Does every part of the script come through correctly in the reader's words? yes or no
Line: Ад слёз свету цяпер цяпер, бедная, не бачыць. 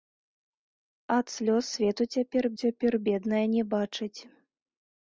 yes